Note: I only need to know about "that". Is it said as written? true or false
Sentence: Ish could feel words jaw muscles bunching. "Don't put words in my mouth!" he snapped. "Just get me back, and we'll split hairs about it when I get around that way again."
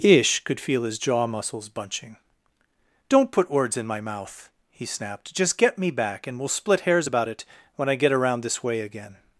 false